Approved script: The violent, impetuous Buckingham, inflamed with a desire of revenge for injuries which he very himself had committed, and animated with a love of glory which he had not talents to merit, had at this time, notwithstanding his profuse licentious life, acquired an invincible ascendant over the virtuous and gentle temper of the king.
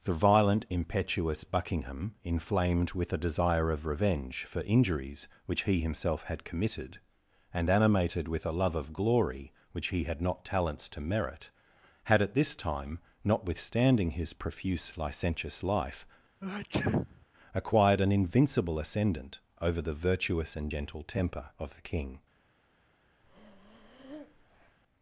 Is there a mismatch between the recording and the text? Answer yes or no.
yes